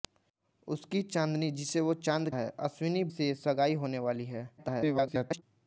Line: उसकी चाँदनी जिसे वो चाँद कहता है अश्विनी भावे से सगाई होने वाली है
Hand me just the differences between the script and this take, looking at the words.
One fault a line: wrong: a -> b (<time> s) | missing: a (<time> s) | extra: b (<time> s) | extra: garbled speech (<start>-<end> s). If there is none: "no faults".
missing: कहता (2.3 s)
missing: भावे (3.0 s)
extra: garbled speech (4.6-5.4 s)